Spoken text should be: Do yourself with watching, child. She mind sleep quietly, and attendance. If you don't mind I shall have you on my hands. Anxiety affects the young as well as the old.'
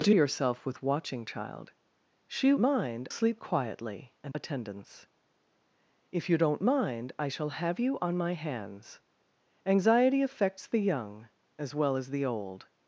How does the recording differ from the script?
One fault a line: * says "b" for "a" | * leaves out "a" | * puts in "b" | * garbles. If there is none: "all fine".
all fine